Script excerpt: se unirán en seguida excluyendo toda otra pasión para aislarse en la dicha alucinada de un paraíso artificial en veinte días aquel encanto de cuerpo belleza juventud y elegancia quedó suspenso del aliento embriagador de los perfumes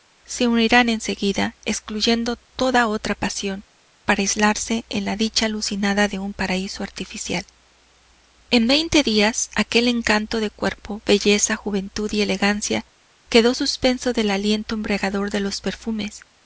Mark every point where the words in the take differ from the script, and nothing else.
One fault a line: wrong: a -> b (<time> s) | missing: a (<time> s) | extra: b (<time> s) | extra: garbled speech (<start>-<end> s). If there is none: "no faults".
no faults